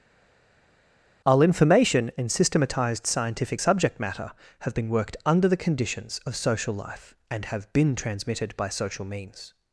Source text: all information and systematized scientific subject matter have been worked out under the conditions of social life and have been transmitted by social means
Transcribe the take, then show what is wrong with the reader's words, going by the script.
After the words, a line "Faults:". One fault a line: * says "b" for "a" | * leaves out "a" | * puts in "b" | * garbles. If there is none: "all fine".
all information and systematized scientific subject matter have been worked under the conditions of social life and have been transmitted by social means
Faults:
* leaves out "out"